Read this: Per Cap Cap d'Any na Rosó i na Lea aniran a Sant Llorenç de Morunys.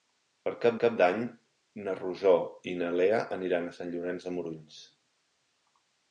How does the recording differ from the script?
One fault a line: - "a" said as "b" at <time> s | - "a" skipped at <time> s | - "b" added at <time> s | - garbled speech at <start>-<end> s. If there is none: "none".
none